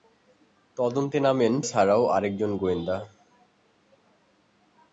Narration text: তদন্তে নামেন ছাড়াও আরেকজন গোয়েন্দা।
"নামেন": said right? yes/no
yes